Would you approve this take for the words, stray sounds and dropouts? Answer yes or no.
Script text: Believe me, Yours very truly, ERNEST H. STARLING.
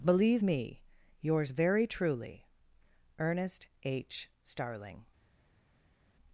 yes